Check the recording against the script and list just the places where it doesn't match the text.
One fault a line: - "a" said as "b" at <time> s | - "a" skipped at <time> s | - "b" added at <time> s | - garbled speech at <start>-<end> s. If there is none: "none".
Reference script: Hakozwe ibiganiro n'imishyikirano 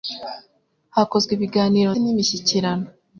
none